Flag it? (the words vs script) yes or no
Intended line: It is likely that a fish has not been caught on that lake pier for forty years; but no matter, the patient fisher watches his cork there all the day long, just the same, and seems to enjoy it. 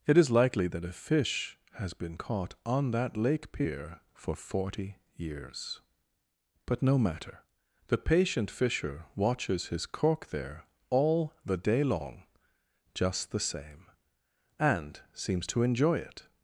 yes